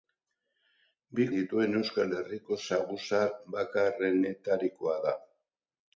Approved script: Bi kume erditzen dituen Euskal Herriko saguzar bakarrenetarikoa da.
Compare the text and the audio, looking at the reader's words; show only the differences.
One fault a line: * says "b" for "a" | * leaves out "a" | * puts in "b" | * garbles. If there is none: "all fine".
* leaves out "kume erditzen"